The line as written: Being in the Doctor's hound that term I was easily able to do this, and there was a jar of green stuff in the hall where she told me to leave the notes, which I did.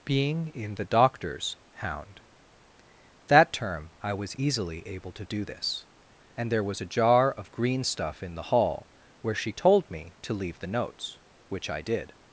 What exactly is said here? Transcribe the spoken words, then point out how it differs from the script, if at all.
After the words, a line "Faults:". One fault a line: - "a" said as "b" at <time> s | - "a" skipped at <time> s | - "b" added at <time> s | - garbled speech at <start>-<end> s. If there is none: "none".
Being in the Doctor's hound that term I was easily able to do this, and there was a jar of green stuff in the hall where she told me to leave the notes, which I did.
Faults:
none